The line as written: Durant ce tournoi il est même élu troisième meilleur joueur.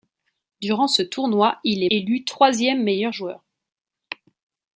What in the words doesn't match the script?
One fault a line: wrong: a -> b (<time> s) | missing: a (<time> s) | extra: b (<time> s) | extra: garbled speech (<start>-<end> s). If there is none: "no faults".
missing: même (1.9 s)